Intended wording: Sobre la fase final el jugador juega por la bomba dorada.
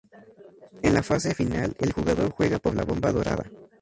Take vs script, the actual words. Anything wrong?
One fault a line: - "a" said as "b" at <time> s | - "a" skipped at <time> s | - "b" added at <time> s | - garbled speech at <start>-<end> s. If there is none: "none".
- "Sobre" said as "En" at 0.8 s